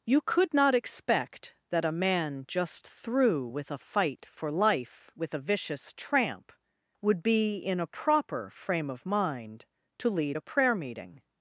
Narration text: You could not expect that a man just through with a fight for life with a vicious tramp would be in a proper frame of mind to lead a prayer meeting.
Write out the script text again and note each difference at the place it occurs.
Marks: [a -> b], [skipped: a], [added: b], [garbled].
You could not expect that a man just through with a fight for life with a vicious tramp would be in a proper frame of mind to lead a prayer meeting.